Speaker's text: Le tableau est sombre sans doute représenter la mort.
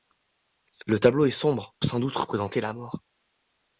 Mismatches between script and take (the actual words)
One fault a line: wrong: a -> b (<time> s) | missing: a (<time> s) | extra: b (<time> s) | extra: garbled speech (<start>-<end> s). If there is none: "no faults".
no faults